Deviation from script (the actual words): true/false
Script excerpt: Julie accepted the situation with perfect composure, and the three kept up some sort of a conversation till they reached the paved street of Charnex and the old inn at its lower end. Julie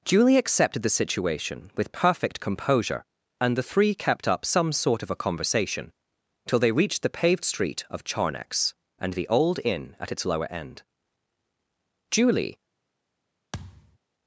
false